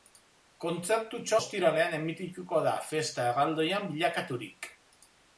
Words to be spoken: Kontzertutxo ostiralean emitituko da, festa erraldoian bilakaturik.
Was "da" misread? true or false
false